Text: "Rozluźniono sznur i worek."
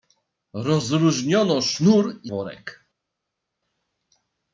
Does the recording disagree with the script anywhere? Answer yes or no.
no